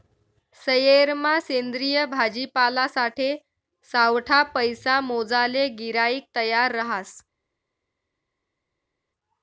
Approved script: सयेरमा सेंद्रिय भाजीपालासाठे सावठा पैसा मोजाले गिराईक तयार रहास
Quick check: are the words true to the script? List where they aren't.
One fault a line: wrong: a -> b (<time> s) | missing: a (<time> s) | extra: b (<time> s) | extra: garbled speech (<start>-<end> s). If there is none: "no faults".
no faults